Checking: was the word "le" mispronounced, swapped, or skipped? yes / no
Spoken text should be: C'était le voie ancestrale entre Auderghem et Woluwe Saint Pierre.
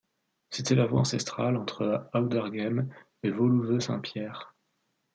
yes